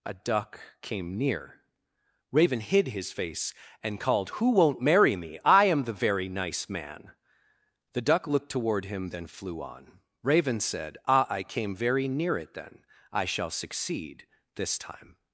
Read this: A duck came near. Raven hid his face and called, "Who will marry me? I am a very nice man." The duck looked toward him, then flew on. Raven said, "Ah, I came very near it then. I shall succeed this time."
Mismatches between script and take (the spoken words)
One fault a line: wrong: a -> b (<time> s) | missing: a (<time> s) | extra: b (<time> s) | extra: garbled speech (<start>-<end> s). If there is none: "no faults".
wrong: will -> won't (4.5 s)
wrong: a -> the (5.8 s)